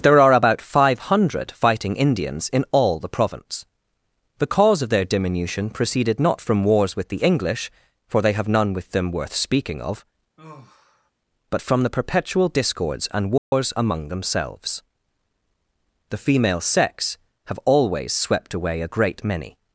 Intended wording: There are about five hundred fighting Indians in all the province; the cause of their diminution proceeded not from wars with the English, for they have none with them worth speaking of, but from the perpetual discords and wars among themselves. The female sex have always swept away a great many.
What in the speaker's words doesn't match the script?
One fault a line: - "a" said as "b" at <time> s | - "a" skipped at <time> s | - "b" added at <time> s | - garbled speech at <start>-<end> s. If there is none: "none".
none